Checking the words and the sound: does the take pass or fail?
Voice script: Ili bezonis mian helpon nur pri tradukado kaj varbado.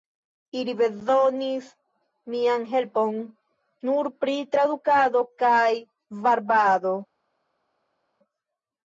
pass